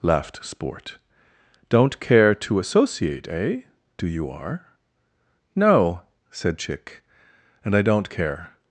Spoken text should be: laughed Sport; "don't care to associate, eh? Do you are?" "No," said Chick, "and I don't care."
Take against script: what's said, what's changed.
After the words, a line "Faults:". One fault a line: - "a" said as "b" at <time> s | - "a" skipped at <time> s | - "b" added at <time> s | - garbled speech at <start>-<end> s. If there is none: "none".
laughed Sport; "don't care to associate, eh? Do you are?" "No," said Chick, "and I don't care."
Faults:
none